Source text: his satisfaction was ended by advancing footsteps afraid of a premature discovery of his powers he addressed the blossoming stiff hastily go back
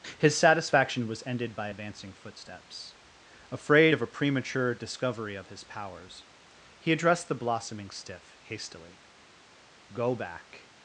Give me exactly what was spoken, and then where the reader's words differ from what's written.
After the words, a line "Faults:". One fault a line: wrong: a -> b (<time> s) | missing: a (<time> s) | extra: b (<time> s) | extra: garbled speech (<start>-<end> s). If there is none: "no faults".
his satisfaction was ended by advancing footsteps afraid of a premature discovery of his powers he addressed the blossoming stiff hastily go back
Faults:
no faults